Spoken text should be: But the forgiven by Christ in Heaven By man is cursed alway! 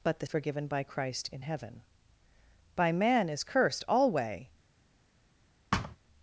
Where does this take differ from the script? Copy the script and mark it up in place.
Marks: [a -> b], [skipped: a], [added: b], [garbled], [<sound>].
But the forgiven by Christ in Heaven By man is cursed alway! [thud]